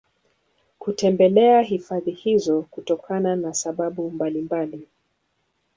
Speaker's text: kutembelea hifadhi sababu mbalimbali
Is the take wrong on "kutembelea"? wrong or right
right